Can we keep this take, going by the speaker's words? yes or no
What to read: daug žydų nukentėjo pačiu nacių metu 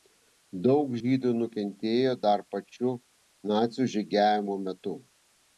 no